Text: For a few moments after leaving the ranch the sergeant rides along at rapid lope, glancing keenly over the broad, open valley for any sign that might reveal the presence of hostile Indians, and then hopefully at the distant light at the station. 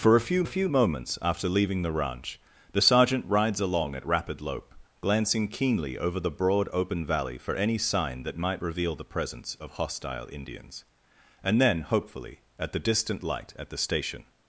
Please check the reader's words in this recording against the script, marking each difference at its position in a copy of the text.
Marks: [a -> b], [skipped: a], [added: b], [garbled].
For a few [added: a few] moments after leaving the ranch the sergeant rides along at rapid lope, glancing keenly over the broad, open valley for any sign that might reveal the presence of hostile Indians, and then hopefully at the distant light at the station.